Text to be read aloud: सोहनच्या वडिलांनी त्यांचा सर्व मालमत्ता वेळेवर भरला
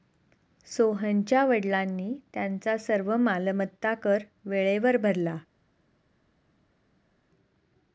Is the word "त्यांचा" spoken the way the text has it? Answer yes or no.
yes